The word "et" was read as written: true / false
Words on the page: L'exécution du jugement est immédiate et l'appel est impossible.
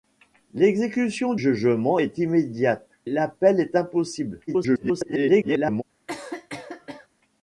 false